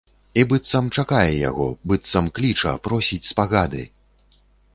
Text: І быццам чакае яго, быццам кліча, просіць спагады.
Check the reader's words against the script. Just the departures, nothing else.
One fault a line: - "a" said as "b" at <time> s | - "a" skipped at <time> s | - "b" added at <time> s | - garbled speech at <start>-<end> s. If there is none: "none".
none